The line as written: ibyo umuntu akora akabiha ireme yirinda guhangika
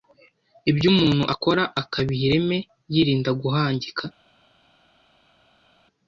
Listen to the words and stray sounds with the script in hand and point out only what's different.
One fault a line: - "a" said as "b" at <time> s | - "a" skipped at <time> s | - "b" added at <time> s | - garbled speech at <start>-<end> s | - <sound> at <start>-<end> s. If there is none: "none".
none